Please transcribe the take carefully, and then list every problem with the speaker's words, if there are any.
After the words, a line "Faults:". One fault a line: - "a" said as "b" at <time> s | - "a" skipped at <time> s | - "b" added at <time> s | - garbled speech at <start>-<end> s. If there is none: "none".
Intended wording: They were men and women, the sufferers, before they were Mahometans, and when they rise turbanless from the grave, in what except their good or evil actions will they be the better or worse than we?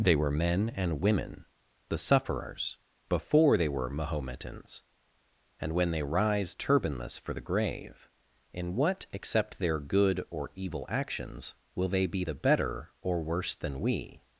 They were men and women, the sufferers, before they were Mahometans, and when they rise turbanless for the grave, in what except their good or evil actions will they be the better or worse than we?
Faults:
- "from" said as "for" at 7.2 s